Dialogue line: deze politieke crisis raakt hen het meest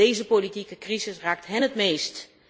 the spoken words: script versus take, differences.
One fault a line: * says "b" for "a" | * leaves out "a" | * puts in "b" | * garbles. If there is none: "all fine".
all fine